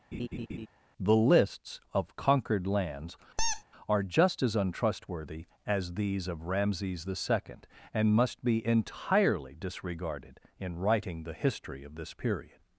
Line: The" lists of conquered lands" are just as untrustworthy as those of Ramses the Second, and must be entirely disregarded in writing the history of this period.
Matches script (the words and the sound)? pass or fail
fail